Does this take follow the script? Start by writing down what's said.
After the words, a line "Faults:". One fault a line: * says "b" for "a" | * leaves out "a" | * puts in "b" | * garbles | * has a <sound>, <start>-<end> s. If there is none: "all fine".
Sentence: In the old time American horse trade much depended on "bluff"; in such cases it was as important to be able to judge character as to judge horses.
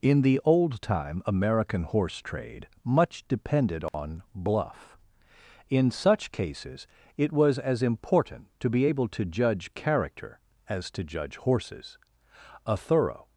In the old time American horse trade much depended on "bluff"; in such cases it was as important to be able to judge character as to judge horses. A thorough
Faults:
* has a dropout, 3.9-3.9 s
* puts in "A thorough"